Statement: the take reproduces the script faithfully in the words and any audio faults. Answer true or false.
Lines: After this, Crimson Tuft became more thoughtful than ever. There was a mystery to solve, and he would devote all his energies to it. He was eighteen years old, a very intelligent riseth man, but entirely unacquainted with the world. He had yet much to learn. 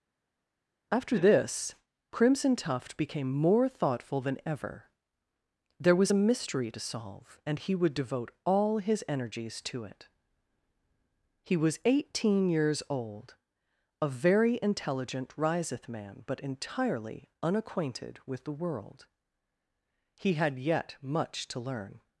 true